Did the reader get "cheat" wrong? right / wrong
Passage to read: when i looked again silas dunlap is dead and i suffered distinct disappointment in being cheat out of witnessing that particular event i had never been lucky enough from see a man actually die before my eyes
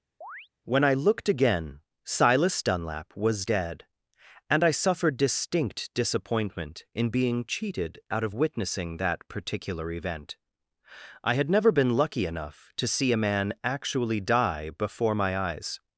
wrong